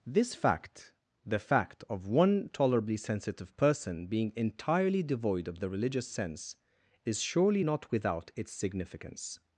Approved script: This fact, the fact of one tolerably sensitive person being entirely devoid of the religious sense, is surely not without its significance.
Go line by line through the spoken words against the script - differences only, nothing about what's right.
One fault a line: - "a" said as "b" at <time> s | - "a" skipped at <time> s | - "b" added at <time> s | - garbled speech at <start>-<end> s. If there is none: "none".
none